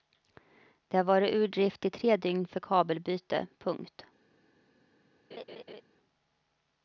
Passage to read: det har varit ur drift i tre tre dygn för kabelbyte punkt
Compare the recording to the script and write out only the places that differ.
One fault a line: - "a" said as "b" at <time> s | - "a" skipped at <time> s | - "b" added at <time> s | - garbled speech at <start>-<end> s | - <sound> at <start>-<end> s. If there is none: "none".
- "tre" skipped at 2.2 s
- laugh at 5.3-5.8 s